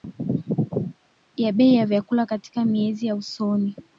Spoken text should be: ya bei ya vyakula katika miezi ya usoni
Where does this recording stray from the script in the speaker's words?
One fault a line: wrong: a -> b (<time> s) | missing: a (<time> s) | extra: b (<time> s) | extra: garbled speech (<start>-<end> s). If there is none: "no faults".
no faults